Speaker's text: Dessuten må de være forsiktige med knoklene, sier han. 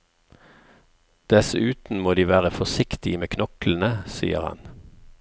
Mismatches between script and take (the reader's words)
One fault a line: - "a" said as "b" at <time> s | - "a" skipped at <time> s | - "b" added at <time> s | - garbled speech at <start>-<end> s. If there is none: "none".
none